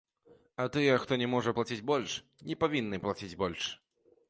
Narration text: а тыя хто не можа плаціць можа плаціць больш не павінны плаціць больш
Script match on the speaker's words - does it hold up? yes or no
no